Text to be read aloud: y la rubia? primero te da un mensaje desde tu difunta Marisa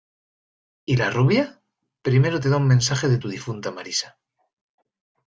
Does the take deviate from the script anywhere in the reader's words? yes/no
yes